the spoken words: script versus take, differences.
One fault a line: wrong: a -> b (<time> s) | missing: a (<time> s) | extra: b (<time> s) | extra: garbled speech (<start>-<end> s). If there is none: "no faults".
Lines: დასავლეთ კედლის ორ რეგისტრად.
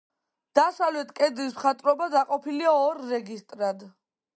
extra: მხატვრობა დაყოფილია (1.6 s)